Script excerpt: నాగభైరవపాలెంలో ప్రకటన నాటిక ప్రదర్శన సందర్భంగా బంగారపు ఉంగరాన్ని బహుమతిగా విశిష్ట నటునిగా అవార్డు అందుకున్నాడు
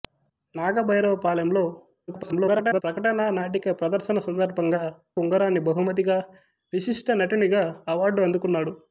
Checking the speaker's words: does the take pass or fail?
fail